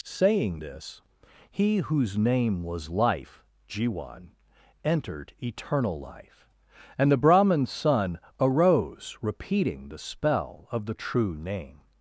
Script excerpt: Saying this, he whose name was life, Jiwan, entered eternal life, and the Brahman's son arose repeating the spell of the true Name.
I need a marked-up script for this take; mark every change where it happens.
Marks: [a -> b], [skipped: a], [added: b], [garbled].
Saying this, he whose name was life, Jiwan, entered eternal life, and the Brahman's son arose repeating the spell of the true Name.